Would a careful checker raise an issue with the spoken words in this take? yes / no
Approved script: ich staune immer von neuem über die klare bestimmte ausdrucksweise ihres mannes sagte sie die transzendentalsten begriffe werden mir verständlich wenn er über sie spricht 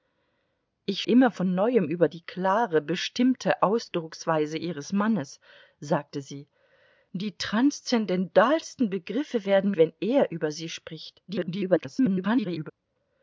yes